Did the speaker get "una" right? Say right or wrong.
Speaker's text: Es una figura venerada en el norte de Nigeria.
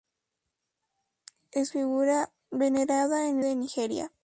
wrong